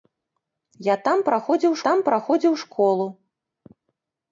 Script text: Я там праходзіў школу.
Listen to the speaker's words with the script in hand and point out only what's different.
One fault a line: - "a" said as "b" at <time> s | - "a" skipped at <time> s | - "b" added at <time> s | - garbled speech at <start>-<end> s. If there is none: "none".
- "там праходзіў" added at 1.9 s